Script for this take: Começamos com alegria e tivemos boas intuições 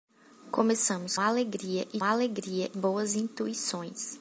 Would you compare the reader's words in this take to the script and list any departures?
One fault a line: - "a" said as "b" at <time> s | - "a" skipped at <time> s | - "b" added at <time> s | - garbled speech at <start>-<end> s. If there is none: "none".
- "com" skipped at 1.1 s
- "tivemos" said as "alegria" at 2.0 s